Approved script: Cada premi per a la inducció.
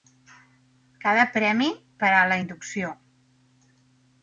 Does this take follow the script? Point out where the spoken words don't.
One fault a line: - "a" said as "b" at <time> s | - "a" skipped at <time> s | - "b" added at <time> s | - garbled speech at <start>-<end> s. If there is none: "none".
none